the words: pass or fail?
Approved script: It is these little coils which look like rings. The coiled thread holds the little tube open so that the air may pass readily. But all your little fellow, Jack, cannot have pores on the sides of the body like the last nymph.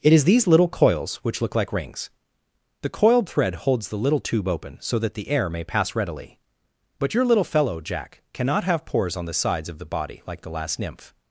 fail